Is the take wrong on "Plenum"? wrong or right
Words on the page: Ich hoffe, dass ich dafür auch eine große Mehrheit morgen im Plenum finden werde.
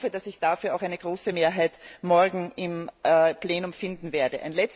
right